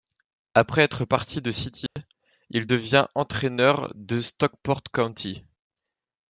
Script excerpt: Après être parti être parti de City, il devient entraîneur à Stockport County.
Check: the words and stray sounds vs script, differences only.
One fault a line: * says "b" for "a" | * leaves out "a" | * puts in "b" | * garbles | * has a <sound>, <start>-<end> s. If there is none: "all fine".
* leaves out "être parti"
* has a dropout, 1.9-2.0 s
* says "de" for "à"